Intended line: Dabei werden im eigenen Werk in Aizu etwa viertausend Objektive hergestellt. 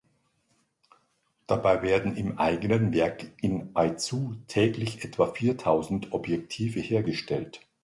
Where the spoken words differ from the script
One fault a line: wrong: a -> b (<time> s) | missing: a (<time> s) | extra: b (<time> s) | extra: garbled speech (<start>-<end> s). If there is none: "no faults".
extra: täglich (4.5 s)